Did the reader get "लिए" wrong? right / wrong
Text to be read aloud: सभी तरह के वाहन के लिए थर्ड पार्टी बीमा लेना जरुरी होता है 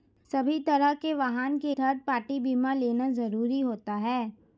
wrong